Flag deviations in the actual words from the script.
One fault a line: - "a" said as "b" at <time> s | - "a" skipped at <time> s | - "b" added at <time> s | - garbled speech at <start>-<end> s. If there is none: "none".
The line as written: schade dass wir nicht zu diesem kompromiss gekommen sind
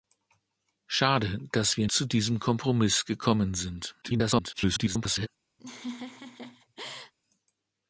- "nicht" skipped at 1.9 s
- garbled speech at 4.0-5.3 s